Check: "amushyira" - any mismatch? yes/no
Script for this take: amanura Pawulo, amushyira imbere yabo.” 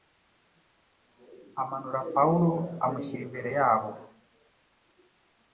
no